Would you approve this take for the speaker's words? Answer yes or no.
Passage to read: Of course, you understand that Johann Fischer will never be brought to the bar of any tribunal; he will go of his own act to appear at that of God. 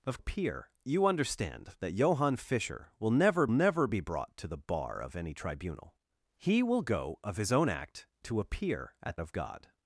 no